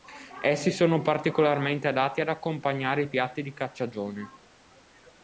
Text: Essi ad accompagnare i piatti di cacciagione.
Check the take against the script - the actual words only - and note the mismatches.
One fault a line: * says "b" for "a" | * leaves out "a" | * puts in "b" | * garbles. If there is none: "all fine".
* puts in "sono particolarmente adatti"